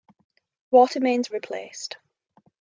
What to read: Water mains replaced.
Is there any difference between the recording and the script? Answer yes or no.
no